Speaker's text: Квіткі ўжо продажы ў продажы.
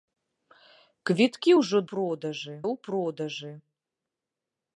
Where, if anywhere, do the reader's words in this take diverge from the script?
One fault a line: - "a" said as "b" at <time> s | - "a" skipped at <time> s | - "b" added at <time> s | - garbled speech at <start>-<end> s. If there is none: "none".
none